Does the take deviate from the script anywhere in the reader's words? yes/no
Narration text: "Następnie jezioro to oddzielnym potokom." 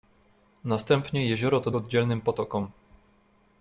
no